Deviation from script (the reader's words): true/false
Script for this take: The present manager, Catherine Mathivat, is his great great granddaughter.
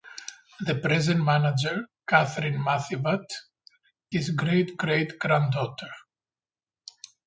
true